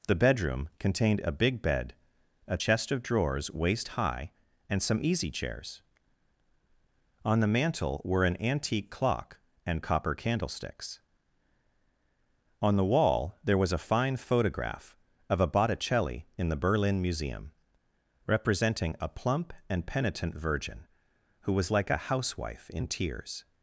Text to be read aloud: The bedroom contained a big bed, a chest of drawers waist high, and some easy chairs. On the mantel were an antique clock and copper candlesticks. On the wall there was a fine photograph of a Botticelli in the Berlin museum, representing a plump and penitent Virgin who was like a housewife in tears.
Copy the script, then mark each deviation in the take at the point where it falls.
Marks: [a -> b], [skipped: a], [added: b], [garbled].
The bedroom contained a big bed, a chest of drawers waist high, and some easy chairs. On the mantel were an antique clock and copper candlesticks. On the wall there was a fine photograph of a Botticelli in the Berlin museum, representing a plump and penitent Virgin who was like a housewife in tears.